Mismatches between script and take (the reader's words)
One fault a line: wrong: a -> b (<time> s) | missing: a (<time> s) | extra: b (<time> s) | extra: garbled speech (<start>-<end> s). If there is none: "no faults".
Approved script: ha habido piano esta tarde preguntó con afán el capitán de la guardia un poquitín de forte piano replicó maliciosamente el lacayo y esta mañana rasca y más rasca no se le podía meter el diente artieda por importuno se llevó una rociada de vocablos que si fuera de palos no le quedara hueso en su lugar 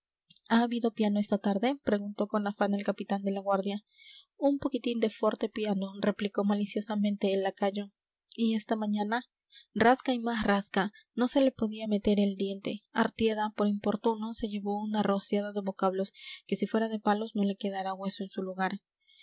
no faults